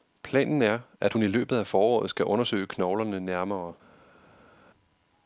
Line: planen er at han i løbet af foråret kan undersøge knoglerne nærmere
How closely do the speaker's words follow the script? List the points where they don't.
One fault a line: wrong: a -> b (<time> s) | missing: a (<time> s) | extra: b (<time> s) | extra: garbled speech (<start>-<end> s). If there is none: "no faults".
wrong: han -> hun (1.1 s)
wrong: kan -> skal (2.1 s)